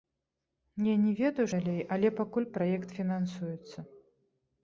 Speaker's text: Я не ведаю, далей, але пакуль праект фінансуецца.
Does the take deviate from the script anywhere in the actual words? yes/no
no